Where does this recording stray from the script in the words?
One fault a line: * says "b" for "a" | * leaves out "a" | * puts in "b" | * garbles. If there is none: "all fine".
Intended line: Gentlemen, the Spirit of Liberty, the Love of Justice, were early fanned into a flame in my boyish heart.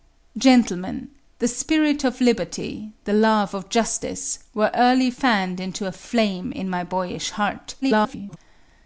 * garbles